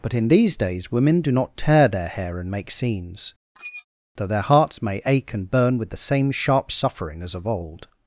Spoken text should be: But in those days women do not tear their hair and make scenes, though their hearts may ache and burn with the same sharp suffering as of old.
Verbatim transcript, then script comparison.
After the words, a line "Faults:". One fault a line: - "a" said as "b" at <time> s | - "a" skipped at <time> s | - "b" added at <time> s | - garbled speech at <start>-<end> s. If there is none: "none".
But in these days women do not tear their hair and make scenes, though their hearts may ache and burn with the same sharp suffering as of old.
Faults:
- "those" said as "these" at 0.3 s